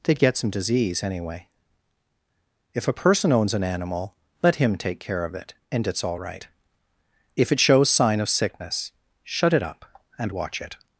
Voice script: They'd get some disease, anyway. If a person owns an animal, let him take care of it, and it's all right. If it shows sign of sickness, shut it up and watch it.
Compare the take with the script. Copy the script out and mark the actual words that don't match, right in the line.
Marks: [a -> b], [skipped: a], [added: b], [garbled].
They'd get some disease, anyway. If a person owns an animal, let him take care of it, and it's all right. If it shows sign of sickness, shut it up and watch it.